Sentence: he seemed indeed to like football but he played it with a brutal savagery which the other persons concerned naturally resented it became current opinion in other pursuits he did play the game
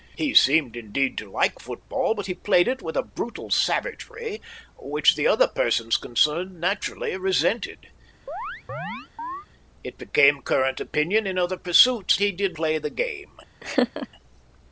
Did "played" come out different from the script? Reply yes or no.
no